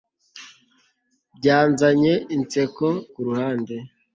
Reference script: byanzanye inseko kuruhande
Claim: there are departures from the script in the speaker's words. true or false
false